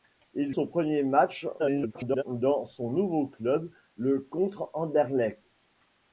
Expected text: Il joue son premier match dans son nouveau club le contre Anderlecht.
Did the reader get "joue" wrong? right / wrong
wrong